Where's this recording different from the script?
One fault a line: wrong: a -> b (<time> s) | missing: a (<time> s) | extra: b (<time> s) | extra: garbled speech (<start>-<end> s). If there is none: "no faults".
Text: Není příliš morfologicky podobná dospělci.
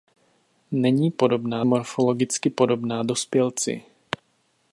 wrong: příliš -> podobná (1.1 s)